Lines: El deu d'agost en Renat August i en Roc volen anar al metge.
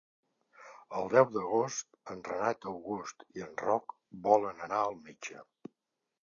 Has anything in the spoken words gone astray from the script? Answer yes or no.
no